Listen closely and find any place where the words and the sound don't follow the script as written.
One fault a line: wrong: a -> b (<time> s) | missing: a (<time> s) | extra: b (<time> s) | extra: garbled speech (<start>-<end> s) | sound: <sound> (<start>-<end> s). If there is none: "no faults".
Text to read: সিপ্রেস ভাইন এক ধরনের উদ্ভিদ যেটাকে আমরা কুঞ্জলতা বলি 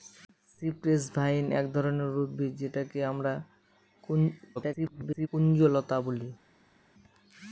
extra: garbled speech (4.6-5.3 s)